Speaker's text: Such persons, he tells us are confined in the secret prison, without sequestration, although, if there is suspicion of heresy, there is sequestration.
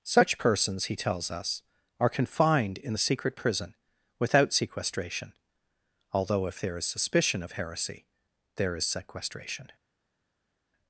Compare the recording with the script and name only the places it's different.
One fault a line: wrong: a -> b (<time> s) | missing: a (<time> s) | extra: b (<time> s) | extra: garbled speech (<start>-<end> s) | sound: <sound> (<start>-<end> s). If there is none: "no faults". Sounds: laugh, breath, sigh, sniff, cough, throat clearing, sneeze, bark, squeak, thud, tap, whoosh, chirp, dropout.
no faults